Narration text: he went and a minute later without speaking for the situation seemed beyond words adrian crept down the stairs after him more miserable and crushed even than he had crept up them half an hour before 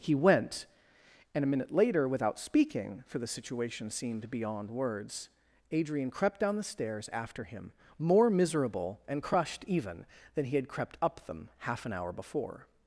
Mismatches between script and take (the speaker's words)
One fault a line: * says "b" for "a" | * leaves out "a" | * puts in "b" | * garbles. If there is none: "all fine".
all fine